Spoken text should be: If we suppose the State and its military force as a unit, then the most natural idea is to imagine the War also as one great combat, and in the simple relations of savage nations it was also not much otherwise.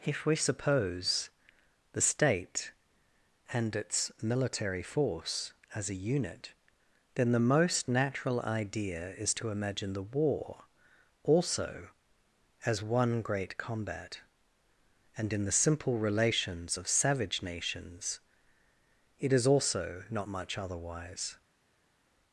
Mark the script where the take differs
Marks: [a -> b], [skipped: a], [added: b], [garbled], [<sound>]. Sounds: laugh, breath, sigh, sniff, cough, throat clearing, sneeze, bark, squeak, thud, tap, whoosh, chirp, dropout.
If we suppose the State and its military force as a unit, then the most natural idea is to imagine the War also as one great combat, and in the simple relations of savage nations it [was -> is] also not much otherwise.